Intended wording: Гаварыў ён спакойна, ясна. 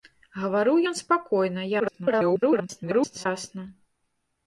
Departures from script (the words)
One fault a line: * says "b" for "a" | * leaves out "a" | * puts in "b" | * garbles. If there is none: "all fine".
* garbles